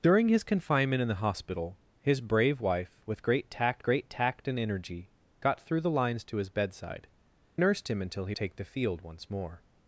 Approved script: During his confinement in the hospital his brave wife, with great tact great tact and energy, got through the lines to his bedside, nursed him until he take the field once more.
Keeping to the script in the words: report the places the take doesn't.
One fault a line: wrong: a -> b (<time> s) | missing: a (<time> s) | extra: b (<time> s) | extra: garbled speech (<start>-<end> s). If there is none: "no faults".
no faults